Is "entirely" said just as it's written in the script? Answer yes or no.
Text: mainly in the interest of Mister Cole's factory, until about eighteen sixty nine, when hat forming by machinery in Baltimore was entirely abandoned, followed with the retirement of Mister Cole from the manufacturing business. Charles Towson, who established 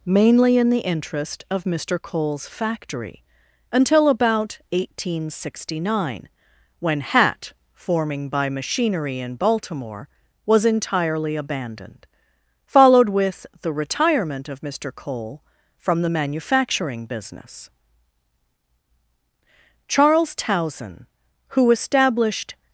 yes